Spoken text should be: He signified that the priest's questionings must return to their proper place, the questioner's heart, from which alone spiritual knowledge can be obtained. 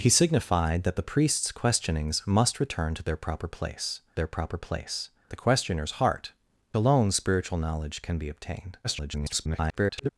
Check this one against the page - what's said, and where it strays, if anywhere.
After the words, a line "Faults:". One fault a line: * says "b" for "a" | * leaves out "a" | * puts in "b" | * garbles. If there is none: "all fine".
He signified that the priest's questionings must return to their proper place their proper place, the questioner's heart, alone spiritual knowledge can be obtained. [garbled]
Faults:
* puts in "their proper place"
* leaves out "from which"
* garbles